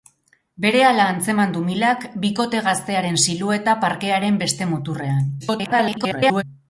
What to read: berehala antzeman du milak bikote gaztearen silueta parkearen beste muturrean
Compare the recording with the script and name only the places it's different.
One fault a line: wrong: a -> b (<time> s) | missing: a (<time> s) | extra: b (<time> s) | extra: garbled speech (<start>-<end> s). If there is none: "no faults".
extra: garbled speech (5.4-6.4 s)